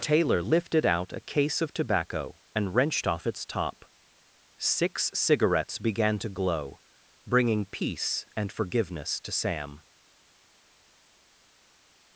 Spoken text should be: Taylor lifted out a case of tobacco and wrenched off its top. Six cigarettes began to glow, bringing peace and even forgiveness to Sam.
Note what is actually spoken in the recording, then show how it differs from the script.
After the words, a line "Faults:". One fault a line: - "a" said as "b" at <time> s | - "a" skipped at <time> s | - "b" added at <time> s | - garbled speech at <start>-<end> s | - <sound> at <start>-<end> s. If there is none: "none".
Taylor lifted out a case of tobacco and wrenched off its top. Six cigarettes began to glow, bringing peace and forgiveness to Sam.
Faults:
- "even" skipped at 8.5 s